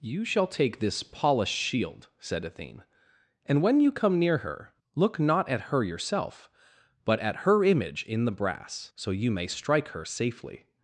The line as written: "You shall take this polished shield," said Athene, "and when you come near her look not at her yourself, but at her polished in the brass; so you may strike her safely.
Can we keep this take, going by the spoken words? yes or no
no